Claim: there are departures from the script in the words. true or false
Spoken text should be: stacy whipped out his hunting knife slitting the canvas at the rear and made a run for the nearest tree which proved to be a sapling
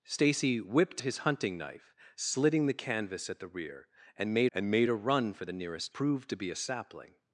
true